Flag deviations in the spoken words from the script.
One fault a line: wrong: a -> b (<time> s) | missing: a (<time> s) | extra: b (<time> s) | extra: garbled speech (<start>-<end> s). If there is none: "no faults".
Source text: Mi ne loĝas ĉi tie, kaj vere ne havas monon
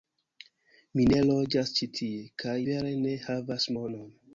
no faults